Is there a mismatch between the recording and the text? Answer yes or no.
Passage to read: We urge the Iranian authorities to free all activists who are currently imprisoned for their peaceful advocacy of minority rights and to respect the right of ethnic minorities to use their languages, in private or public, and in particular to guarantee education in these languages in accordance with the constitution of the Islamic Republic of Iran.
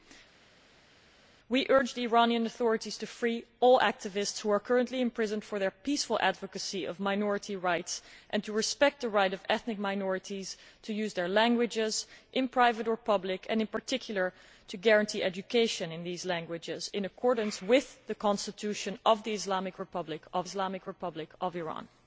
yes